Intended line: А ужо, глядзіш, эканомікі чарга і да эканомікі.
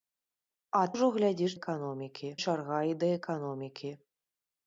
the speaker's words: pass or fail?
pass